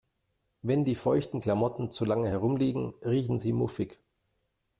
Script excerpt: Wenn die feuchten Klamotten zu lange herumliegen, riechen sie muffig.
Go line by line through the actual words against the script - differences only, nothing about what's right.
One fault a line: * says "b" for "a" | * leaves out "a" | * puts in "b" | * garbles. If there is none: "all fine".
all fine